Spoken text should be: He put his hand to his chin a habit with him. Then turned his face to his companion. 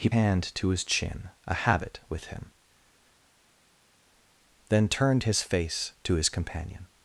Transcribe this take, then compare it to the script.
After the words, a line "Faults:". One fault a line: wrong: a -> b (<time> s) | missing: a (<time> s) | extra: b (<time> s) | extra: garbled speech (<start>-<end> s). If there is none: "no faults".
He hand to his chin a habit with him. Then turned his face to his companion.
Faults:
missing: put his (0.1 s)